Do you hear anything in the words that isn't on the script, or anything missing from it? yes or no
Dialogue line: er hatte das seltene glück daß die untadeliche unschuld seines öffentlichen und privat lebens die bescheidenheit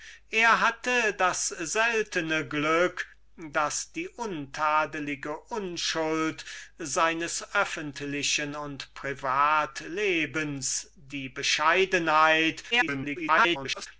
yes